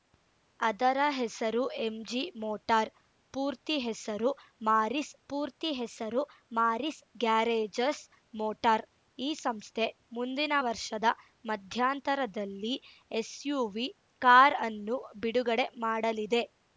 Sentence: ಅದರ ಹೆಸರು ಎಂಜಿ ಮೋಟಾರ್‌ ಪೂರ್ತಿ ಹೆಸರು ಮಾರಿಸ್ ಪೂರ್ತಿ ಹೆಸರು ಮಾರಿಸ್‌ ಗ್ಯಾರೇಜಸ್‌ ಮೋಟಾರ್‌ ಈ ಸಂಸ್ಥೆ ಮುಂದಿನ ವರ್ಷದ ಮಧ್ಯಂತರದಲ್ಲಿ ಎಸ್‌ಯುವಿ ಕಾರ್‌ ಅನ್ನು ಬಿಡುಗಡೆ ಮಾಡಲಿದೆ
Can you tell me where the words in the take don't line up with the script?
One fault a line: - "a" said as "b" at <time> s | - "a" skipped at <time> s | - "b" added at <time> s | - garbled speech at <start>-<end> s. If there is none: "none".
none